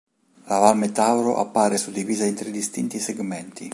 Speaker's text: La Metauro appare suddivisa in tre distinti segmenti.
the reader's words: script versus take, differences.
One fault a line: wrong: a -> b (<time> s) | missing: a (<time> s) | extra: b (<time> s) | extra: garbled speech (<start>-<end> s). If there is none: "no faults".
extra: Val (0.6 s)